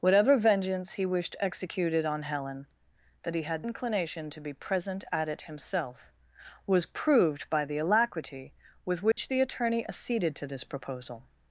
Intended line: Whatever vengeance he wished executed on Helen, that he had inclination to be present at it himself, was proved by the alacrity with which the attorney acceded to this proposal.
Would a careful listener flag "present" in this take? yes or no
no